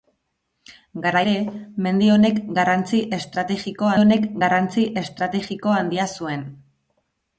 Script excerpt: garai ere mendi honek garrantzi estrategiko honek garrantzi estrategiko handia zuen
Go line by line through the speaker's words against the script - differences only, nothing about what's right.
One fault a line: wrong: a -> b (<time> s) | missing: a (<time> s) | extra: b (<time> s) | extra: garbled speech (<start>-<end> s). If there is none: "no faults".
no faults